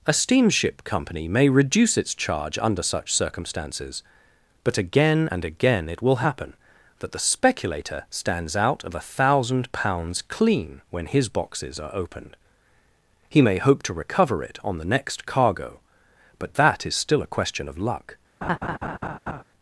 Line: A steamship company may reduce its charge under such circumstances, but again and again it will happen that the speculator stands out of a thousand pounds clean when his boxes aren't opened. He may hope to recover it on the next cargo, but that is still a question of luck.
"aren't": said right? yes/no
no